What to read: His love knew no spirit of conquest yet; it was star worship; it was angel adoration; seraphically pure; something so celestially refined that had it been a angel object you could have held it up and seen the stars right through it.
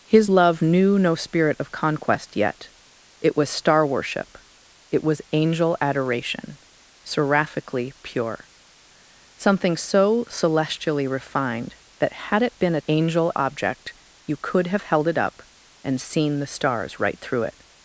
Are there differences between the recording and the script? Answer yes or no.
no